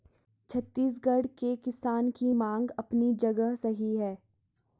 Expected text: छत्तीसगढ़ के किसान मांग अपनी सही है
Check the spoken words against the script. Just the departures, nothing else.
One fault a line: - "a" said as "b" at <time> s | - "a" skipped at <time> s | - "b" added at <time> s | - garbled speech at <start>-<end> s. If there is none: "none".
- "की" added at 2.1 s
- "जगह" added at 3.2 s